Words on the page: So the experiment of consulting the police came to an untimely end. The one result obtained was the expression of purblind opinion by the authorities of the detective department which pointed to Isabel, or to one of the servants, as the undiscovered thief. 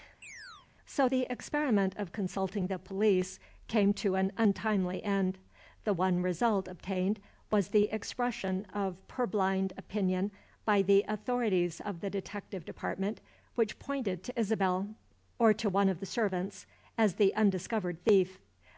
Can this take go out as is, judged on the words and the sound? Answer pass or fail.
fail